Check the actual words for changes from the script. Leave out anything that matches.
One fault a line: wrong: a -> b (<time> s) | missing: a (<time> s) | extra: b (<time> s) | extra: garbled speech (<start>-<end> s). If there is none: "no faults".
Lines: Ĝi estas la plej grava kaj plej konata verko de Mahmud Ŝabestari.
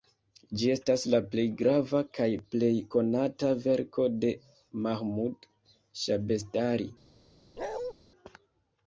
no faults